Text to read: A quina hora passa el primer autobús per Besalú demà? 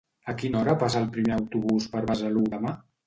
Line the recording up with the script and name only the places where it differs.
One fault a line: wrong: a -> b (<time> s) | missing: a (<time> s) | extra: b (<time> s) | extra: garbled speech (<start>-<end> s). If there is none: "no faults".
no faults